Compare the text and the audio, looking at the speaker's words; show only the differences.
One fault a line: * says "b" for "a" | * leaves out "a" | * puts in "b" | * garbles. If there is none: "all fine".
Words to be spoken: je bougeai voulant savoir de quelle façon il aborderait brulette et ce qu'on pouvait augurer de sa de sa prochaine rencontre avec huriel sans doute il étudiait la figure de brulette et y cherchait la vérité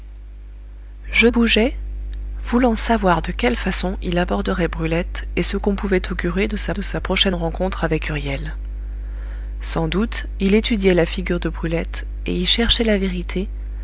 all fine